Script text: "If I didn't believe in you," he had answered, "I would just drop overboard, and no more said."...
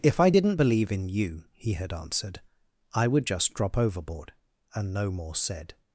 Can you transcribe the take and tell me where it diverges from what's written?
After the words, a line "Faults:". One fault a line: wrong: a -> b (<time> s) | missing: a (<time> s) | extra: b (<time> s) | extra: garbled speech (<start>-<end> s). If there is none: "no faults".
"If I didn't believe in you," he had answered, "I would just drop overboard, and no more said."...
Faults:
no faults